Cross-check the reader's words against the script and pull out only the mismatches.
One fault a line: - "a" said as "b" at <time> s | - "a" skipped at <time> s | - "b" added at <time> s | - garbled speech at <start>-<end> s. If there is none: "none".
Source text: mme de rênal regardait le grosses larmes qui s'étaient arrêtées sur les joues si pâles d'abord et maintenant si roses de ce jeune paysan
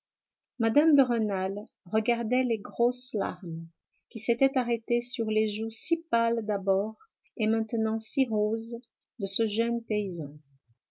- "le" said as "les" at 2.4 s